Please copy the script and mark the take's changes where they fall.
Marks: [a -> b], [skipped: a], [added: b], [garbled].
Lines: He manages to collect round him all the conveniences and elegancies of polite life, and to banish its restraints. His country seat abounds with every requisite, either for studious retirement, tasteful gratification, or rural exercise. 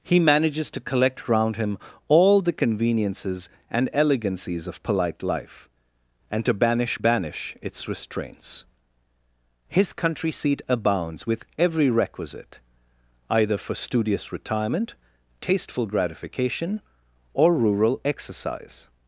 He manages to collect round him all the conveniences and elegancies of polite life, and to banish [added: banish] its restraints. His country seat abounds with every requisite, either for studious retirement, tasteful gratification, or rural exercise.